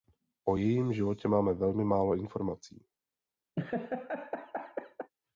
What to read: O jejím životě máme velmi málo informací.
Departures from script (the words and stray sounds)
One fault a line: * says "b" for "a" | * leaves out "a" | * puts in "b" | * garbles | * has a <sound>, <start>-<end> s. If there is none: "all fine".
* has a laugh, 3.6-5.1 s